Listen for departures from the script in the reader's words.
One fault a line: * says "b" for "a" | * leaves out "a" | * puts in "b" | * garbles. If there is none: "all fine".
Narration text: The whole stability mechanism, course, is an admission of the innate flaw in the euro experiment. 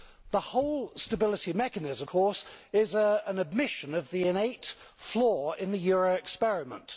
all fine